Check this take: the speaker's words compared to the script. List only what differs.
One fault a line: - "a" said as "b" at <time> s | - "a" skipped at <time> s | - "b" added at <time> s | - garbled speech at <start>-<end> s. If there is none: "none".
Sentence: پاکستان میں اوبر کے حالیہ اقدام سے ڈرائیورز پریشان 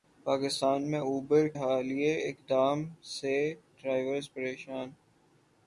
- "کے" skipped at 1.5 s